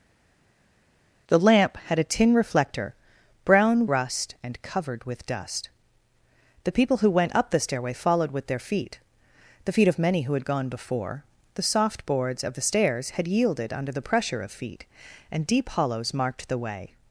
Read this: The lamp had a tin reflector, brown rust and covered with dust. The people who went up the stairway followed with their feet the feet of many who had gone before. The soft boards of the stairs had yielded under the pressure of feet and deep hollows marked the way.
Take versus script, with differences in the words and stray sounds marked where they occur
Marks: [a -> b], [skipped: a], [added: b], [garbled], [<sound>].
The lamp had a tin reflector, brown rust and covered with dust. The people who went up the stairway followed with their feet the feet of many who had gone before. The soft boards of the stairs had yielded under the pressure of feet and deep hollows marked the way.